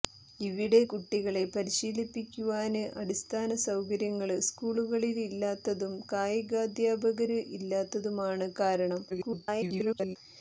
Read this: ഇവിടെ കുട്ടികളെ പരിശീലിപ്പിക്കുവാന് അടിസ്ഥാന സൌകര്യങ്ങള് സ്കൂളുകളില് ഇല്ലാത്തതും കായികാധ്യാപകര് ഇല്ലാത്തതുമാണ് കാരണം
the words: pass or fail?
fail